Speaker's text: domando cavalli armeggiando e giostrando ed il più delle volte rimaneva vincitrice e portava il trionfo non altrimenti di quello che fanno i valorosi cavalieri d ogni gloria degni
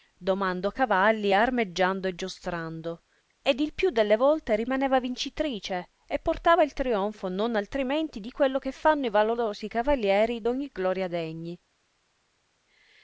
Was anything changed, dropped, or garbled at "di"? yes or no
no